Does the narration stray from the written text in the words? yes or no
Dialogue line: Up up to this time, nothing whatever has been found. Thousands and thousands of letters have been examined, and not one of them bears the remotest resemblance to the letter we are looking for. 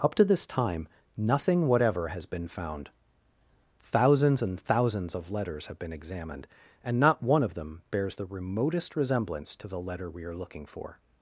yes